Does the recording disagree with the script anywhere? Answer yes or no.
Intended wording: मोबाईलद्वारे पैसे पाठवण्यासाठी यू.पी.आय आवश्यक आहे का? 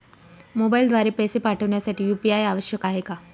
no